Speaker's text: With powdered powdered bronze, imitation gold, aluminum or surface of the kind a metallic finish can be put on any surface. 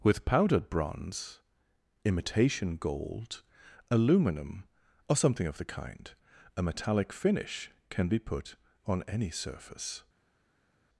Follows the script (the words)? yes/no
no